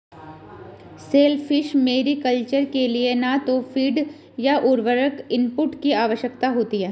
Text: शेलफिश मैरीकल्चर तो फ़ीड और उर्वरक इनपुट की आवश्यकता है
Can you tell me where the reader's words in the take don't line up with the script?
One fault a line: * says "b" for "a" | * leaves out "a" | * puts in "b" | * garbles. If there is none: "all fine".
* puts in "के लिए न"
* says "या" for "और"
* puts in "होती"